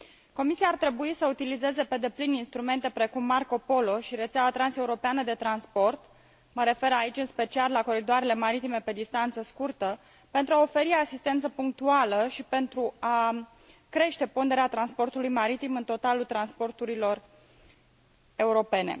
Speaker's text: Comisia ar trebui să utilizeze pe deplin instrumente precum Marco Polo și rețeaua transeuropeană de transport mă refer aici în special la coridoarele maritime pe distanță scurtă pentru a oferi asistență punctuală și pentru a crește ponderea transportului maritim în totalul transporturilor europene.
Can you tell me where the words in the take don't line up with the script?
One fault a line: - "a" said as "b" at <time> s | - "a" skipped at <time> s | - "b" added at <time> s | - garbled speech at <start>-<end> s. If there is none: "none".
none